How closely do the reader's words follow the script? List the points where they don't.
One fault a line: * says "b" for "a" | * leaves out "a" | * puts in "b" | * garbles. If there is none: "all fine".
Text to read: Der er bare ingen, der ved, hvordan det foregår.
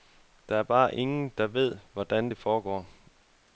all fine